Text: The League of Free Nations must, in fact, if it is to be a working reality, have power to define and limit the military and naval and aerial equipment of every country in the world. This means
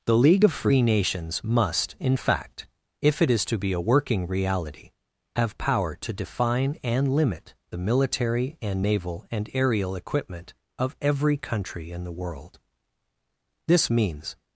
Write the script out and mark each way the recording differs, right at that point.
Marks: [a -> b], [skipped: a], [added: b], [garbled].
The League of Free Nations must, in fact, if it is to be a working reality, have power to define and limit the military and naval and aerial equipment of every country in the world. This means